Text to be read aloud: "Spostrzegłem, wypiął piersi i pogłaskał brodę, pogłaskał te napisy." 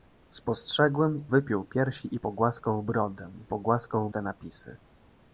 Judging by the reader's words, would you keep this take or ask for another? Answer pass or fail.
pass